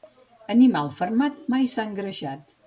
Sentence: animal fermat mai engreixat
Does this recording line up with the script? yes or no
no